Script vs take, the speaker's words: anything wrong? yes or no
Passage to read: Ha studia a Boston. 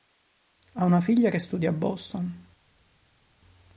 yes